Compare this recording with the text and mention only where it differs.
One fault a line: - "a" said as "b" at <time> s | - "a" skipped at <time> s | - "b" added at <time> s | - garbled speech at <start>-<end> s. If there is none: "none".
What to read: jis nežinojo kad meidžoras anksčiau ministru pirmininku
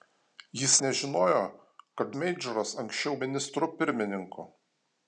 none